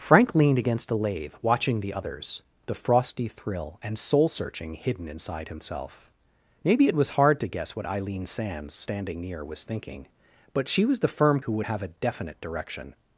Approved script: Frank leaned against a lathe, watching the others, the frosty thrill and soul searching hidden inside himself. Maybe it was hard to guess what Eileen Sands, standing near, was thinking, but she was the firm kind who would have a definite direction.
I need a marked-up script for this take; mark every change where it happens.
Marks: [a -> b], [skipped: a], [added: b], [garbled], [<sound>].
Frank leaned against a lathe, watching the others, the frosty thrill and soul searching hidden inside himself. Maybe it was hard to guess what Eileen Sands, standing near, was thinking, but she was the firm [skipped: kind] who would have a definite direction.